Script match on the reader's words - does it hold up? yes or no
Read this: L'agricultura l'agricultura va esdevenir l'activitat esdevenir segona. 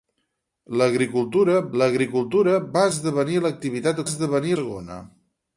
yes